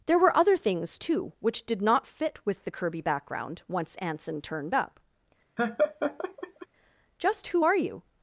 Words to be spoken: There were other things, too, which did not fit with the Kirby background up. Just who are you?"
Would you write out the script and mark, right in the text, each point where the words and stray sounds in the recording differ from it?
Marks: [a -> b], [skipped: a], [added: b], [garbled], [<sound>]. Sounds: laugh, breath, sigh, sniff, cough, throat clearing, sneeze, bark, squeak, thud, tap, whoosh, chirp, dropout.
There were other things, too, which did not fit with the Kirby background [added: once Anson turned] up. [laugh] Just who are you?"